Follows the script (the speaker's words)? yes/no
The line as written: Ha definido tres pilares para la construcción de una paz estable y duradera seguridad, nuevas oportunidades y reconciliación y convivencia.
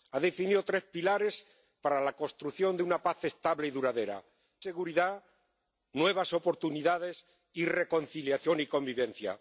yes